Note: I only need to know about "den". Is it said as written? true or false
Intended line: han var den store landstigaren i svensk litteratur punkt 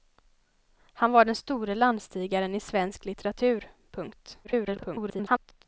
true